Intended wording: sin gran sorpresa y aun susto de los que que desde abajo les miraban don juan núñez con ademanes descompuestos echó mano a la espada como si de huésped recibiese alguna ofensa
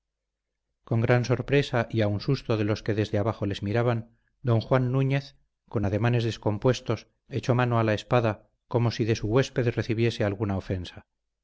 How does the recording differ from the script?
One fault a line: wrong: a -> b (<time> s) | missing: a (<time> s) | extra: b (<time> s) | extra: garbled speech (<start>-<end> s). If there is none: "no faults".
wrong: sin -> con (0.8 s)
missing: que (3.0 s)
extra: su (9.2 s)